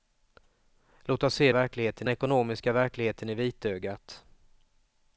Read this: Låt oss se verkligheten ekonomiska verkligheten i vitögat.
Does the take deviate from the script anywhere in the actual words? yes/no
no